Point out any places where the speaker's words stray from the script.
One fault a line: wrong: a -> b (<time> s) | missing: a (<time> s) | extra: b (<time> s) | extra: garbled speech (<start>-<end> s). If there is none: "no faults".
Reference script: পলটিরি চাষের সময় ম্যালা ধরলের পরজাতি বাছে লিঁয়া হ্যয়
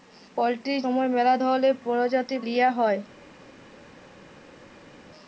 missing: চাষের (0.8 s)
missing: বাছে (2.4 s)